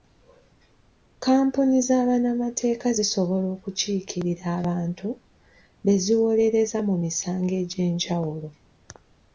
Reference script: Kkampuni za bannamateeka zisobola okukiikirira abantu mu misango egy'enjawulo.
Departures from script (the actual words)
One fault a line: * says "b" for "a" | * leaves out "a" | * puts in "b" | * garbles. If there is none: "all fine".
* puts in "be ziwolereza"